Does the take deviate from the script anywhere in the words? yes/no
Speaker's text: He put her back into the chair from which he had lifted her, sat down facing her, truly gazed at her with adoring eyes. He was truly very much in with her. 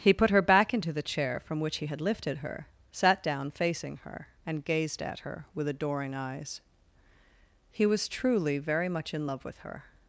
yes